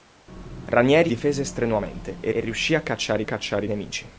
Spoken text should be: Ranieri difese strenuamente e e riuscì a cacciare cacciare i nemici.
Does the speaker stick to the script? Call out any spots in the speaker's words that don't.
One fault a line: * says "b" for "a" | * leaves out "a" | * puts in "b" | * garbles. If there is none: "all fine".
all fine